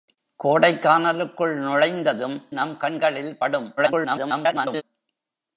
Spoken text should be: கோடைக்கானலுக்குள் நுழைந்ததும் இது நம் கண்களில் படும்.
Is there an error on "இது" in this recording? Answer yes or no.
yes